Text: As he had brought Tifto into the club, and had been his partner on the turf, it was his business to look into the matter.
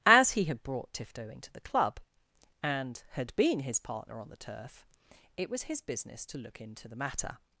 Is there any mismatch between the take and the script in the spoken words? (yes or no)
no